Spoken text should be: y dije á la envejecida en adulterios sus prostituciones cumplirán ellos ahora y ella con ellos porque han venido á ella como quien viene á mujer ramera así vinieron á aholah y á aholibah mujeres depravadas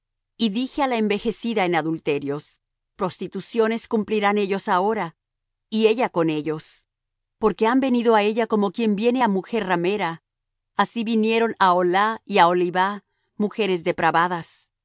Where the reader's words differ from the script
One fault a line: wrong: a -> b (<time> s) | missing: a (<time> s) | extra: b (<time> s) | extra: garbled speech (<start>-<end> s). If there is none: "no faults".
missing: sus (2.6 s)